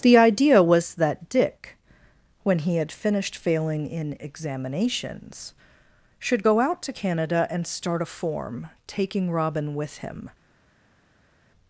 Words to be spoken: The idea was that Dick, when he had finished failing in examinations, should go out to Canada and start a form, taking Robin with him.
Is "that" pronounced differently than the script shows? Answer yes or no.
no